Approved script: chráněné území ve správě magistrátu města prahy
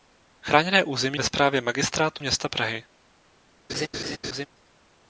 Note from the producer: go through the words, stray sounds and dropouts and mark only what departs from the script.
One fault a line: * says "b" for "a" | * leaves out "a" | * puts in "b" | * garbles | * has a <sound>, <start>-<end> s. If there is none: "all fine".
* has a laugh, 3.7-4.5 s